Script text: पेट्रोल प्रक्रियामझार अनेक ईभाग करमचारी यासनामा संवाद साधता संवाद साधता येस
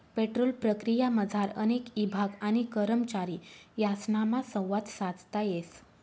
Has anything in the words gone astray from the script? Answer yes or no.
yes